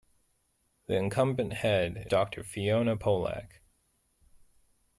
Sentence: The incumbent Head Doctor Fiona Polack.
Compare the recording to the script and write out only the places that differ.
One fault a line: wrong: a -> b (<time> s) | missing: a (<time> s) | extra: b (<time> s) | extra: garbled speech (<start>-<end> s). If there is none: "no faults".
no faults